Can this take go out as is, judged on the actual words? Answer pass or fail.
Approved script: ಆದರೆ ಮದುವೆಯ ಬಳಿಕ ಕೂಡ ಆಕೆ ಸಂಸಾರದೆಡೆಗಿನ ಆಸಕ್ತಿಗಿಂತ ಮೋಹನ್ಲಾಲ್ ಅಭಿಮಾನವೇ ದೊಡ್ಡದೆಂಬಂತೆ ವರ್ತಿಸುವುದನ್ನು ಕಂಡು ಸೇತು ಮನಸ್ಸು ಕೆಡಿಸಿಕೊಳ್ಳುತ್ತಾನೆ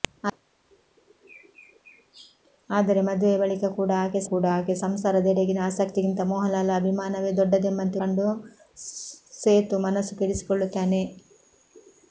fail